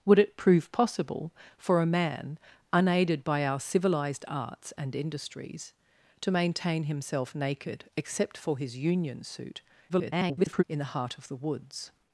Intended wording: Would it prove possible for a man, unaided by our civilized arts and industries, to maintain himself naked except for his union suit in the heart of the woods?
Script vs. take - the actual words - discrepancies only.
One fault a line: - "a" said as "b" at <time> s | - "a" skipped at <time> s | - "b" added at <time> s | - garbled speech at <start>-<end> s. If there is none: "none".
- garbled speech at 9.9-10.6 s